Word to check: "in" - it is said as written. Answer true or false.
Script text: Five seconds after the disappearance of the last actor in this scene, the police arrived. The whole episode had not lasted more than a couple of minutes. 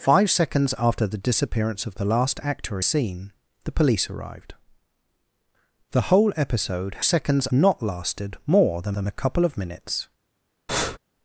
false